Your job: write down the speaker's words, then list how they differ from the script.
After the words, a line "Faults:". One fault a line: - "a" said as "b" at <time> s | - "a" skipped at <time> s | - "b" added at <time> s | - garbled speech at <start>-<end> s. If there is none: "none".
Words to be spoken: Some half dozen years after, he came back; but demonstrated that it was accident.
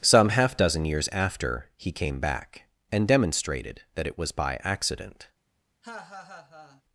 Some half dozen years after, he came back; and demonstrated that it was by accident.
Faults:
- "but" said as "and" at 2.9 s
- "by" added at 4.3 s